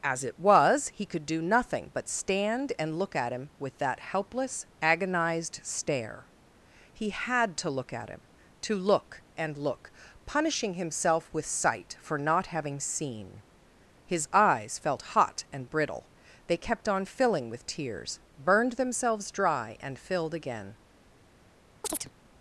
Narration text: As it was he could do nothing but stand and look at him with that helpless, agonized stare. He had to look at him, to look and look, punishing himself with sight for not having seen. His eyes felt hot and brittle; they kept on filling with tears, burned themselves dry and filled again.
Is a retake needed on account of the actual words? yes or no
no